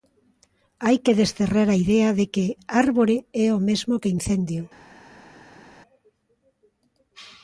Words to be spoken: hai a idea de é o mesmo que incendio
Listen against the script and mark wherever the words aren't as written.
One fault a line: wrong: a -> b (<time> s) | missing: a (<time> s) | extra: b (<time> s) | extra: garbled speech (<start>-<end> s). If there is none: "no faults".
extra: que desterrar (1.0 s)
extra: que árbore (2.3 s)